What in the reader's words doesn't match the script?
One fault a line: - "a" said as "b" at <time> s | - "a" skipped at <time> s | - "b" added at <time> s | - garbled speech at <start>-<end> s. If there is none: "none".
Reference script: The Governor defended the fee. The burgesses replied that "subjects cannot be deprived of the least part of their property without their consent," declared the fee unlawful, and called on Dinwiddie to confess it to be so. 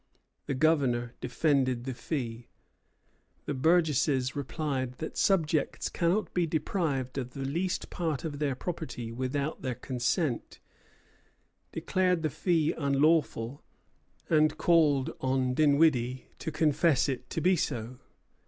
none